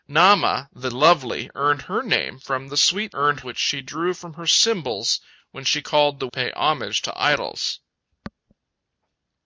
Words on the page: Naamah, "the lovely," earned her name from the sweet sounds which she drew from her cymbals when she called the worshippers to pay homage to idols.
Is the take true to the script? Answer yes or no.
no